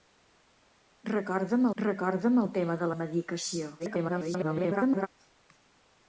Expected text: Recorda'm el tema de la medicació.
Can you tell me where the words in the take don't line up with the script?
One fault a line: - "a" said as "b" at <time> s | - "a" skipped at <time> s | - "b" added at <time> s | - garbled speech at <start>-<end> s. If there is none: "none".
- "recorda'm" added at 1.8 s
- garbled speech at 3.8-5.1 s